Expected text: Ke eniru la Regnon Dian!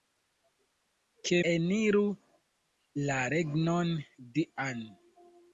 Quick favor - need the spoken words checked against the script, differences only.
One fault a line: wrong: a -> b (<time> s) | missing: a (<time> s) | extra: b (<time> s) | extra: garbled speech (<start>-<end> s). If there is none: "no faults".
no faults